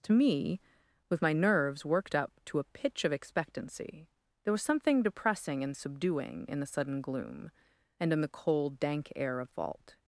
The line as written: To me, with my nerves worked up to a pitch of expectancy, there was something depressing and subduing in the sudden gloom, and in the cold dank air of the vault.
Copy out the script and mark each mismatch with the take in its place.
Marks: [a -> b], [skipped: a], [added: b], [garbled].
To me, with my nerves worked up to a pitch of expectancy, there was something depressing and subduing in the sudden gloom, and in the cold dank air of [skipped: the] vault.